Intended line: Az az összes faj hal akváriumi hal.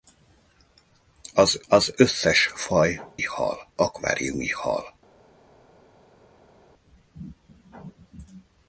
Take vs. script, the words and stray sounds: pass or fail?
pass